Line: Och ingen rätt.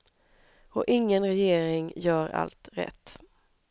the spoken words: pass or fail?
fail